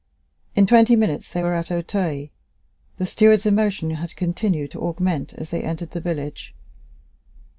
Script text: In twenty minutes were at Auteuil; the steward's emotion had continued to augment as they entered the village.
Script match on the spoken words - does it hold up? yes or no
no